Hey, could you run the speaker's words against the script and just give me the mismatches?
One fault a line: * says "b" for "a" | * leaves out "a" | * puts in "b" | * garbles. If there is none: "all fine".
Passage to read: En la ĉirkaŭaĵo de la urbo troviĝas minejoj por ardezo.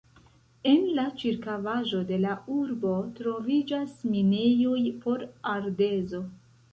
all fine